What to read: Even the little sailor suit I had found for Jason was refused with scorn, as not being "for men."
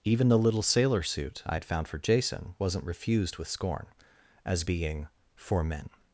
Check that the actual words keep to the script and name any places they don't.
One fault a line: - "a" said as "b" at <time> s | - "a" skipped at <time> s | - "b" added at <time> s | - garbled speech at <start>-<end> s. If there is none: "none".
- "was" said as "wasn't" at 2.6 s
- "not" skipped at 4.6 s